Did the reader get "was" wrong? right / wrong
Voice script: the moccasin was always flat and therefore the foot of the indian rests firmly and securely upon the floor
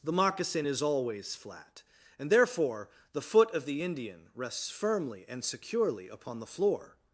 wrong